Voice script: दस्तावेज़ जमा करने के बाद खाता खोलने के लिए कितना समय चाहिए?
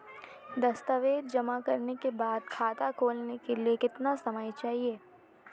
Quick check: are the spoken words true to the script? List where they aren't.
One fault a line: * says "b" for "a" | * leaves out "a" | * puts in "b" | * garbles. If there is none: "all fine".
all fine